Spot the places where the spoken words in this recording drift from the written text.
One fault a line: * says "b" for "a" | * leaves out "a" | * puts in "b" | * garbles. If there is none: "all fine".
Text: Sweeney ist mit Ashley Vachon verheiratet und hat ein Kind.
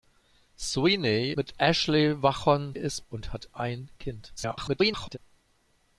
* leaves out "ist"
* says "ist" for "verheiratet"
* garbles